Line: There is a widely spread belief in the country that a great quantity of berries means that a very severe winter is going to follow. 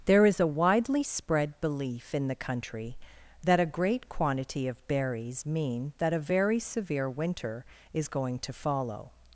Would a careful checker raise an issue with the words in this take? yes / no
yes